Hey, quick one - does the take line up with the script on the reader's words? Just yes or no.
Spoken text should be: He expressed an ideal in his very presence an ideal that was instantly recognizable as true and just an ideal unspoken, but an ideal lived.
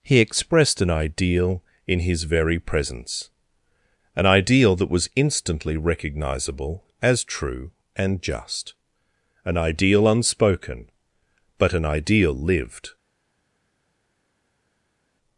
yes